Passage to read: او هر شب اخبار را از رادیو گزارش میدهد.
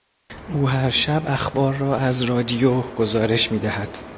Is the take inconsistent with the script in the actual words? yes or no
no